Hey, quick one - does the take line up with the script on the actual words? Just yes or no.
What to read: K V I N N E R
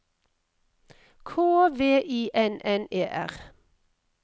yes